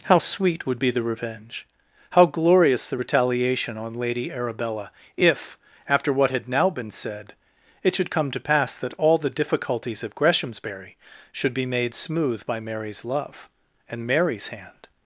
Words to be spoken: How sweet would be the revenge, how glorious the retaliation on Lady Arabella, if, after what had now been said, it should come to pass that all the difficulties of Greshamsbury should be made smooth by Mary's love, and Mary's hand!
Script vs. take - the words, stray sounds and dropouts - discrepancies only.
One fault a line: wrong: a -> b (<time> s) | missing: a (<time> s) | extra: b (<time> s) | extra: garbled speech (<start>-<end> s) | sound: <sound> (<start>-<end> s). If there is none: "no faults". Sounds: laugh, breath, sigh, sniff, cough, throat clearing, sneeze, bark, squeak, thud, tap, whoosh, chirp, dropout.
no faults